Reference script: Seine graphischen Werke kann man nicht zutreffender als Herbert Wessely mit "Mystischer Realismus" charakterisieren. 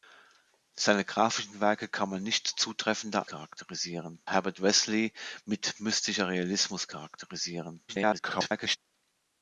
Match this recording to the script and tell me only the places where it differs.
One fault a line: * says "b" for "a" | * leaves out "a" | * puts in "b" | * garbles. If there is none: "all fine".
* says "charakterisieren" for "als"
* garbles